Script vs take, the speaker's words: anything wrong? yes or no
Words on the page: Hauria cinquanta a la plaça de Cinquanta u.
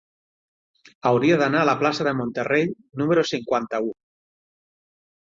yes